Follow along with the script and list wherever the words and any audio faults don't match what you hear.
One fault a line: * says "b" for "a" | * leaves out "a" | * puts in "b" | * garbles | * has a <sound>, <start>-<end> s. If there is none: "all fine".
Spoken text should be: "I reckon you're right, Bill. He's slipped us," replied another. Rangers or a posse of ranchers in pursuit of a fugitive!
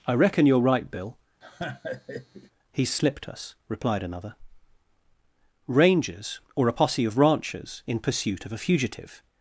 * has a laugh, 1.4-2.5 s